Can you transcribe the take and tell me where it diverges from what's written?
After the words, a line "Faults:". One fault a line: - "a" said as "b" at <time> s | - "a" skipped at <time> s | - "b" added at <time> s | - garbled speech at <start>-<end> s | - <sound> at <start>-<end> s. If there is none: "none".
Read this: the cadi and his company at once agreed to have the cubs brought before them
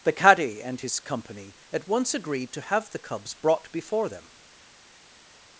the cadi and his company at once agreed to have the cubs brought before them
Faults:
none